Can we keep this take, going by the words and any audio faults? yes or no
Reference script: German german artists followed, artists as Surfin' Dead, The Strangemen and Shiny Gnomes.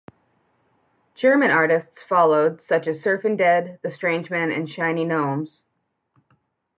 no